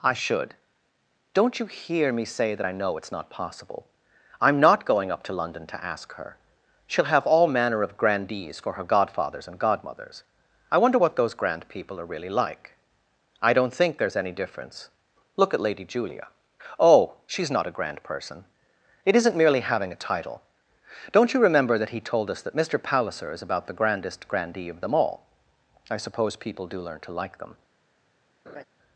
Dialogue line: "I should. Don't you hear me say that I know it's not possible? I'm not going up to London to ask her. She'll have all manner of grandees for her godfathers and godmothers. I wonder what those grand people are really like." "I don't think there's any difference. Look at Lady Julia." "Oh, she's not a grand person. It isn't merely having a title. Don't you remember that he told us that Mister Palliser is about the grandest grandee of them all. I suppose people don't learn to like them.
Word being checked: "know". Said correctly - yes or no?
yes